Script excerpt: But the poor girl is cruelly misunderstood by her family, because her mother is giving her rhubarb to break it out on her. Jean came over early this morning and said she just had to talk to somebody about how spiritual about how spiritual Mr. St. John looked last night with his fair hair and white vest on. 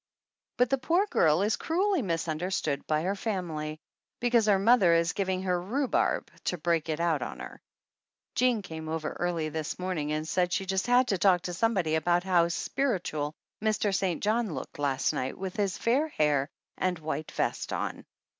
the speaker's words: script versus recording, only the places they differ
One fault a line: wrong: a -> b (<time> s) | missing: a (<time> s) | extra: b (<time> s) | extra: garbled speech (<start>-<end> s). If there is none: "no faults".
missing: about how spiritual (13.3 s)